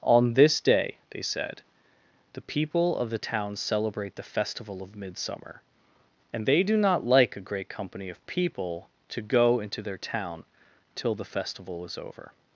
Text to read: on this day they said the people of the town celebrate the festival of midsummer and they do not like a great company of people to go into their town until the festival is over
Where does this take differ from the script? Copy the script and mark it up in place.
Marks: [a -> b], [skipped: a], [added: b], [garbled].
on this day they said the people of the town celebrate the festival of midsummer and they do not like a great company of people to go into their town [until -> till] the festival is over